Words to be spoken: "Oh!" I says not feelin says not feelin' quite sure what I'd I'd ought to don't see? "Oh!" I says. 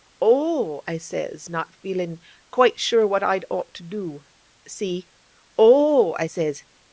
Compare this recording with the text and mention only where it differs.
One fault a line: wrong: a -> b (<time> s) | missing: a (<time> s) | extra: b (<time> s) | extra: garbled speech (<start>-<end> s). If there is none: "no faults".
missing: says not feelin (2.2 s)
missing: I'd (3.5 s)
wrong: don't -> do (3.8 s)